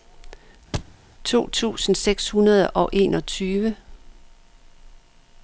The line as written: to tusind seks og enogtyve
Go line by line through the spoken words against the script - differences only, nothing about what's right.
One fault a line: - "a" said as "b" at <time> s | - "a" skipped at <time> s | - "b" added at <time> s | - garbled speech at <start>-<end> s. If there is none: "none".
- "hundrede" added at 2.3 s